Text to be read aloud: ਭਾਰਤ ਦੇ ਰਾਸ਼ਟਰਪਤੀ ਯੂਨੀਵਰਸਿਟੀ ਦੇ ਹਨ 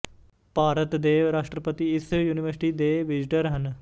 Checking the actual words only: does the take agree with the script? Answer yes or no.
no